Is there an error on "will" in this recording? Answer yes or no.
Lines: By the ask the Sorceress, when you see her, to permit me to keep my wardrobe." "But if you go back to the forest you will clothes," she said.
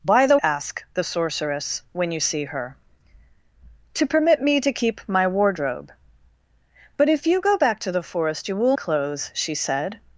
no